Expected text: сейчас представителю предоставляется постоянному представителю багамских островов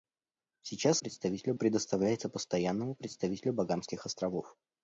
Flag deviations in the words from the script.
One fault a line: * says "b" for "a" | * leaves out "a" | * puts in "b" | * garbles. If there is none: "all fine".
all fine